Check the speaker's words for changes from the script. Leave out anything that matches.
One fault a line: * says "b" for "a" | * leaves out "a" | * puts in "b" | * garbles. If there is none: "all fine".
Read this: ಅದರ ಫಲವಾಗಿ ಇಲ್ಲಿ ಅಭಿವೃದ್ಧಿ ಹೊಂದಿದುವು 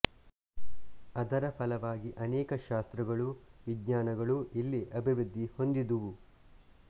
* puts in "ಅನೇಕ ಶಾಸ್ತ್ರಗಳೂ ವಿಜ್ಞಾನಗಳೂ"